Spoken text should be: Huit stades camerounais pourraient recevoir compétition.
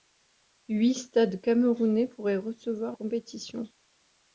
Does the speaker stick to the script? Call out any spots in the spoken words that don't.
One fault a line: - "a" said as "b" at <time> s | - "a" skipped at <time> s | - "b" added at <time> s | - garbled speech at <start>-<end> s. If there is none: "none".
none